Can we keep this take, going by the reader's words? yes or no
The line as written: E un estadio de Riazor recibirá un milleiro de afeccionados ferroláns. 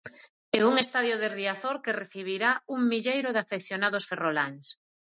no